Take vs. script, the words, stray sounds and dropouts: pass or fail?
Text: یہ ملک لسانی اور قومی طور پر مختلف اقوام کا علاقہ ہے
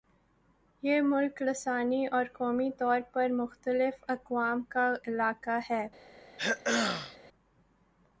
fail